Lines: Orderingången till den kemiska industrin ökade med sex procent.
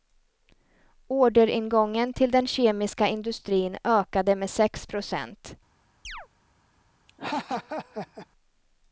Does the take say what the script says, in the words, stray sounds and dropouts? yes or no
no